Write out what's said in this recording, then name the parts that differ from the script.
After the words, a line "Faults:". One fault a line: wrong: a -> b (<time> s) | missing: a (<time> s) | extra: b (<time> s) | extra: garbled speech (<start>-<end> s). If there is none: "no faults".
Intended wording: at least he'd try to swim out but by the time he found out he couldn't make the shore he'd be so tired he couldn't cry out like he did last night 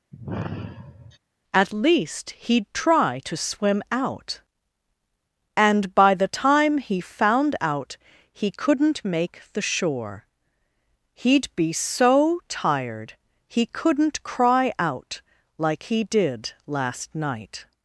at least he'd try to swim out and by the time he found out he couldn't make the shore he'd be so tired he couldn't cry out like he did last night
Faults:
wrong: but -> and (5.6 s)